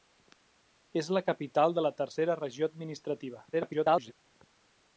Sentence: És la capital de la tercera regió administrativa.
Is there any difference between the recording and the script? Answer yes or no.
yes